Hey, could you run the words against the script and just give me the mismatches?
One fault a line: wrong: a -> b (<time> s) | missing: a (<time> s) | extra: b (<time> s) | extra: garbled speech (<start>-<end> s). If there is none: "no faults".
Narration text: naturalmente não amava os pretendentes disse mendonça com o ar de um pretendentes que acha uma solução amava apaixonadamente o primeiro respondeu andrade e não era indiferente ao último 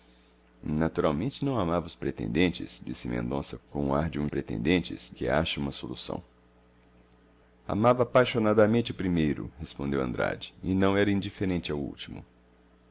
no faults